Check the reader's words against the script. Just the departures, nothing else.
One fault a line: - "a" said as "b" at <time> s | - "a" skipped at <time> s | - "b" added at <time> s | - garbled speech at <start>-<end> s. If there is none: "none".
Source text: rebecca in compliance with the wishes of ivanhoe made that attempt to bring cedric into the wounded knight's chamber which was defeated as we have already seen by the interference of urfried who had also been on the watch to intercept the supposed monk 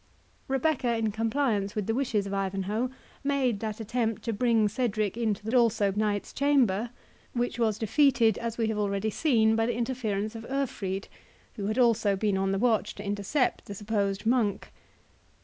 - "wounded" said as "also" at 5.5 s